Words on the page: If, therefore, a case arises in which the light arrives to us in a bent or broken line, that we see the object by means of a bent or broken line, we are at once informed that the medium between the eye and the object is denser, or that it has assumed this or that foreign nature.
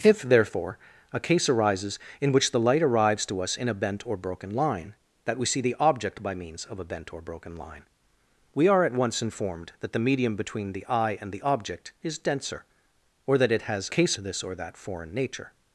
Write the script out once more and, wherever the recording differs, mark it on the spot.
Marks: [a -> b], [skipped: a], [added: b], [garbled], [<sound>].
If, therefore, a case arises in which the light arrives to us in a bent or broken line, that we see the object by means of a bent or broken line, we are at once informed that the medium between the eye and the object is denser, or that it has [assumed -> case] this or that foreign nature.